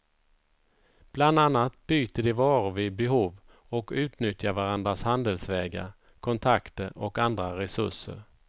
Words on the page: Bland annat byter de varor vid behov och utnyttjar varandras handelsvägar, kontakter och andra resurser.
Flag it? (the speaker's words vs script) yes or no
no